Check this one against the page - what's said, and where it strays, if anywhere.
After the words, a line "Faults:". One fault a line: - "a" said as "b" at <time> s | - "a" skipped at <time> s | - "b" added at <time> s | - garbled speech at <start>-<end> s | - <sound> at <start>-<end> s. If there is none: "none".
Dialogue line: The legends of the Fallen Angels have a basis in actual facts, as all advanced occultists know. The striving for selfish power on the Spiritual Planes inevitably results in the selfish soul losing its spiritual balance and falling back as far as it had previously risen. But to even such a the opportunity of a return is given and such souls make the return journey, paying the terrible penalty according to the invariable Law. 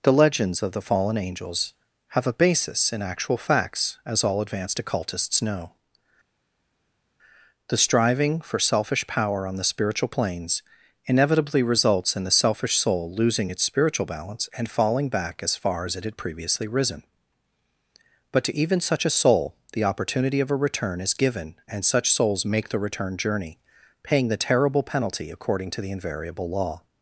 The legends of the Fallen Angels have a basis in actual facts, as all advanced occultists know. The striving for selfish power on the Spiritual Planes inevitably results in the selfish soul losing its spiritual balance and falling back as far as it had previously risen. But to even such a soul, the opportunity of a return is given and such souls make the return journey, paying the terrible penalty according to the invariable Law.
Faults:
- "soul" added at 19.1 s